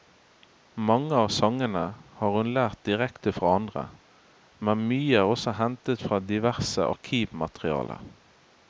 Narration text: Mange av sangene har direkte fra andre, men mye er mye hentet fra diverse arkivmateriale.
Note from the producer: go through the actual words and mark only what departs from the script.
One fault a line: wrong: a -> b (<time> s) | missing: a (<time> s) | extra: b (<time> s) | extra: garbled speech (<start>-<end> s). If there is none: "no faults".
extra: hun lært (2.4 s)
wrong: mye -> også (5.3 s)